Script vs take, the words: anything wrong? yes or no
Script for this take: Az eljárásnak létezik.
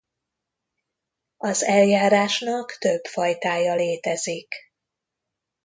yes